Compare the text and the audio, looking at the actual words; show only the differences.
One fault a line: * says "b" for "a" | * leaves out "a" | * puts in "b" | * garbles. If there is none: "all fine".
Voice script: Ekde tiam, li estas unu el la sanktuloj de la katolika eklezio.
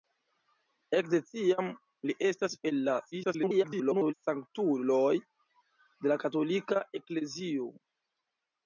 * leaves out "unu"
* garbles